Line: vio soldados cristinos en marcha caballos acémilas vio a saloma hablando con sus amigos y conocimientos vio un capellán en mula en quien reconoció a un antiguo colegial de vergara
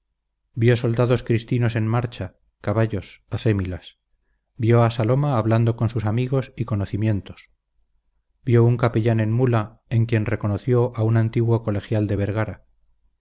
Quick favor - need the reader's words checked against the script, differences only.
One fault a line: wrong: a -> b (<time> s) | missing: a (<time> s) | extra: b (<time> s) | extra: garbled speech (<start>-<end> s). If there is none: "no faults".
no faults